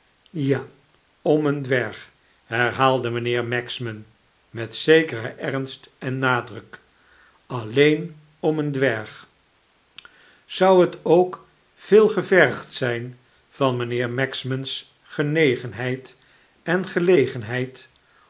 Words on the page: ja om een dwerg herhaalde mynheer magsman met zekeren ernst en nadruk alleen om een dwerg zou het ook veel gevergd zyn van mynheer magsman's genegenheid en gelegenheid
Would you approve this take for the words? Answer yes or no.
yes